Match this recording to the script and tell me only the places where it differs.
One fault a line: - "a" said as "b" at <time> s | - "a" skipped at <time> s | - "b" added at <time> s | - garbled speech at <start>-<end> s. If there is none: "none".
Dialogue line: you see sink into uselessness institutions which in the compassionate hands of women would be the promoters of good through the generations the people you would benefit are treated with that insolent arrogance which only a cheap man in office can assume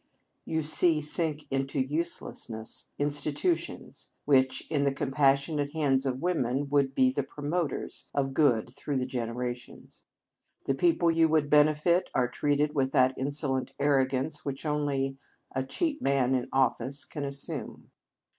none